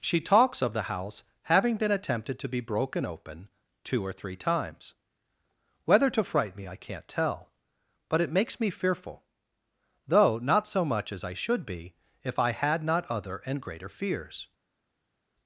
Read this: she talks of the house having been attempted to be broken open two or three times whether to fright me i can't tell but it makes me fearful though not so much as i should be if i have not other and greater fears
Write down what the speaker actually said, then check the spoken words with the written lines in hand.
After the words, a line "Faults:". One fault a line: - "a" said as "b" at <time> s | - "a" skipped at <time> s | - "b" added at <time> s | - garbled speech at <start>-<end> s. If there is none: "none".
she talks of the house having been attempted to be broken open two or three times whether to fright me i can't tell but it makes me fearful though not so much as i should be if i had not other and greater fears
Faults:
- "have" said as "had" at 12.5 s